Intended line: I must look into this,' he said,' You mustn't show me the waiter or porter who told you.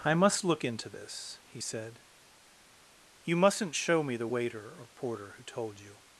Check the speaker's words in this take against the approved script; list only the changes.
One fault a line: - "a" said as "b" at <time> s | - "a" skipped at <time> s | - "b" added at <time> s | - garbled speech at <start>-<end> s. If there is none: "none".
none